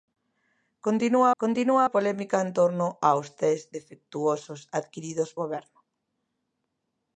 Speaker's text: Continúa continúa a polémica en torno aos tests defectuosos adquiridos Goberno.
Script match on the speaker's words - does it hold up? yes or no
yes